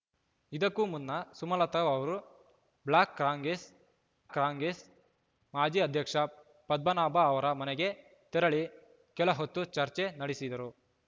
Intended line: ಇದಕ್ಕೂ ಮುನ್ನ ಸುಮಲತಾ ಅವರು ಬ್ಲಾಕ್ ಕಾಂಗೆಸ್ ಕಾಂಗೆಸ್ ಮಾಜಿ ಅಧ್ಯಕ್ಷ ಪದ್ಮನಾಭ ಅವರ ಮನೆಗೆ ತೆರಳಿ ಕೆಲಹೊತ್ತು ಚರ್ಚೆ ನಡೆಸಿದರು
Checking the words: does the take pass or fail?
pass